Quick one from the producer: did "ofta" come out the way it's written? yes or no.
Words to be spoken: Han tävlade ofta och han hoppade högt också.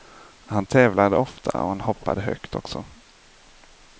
yes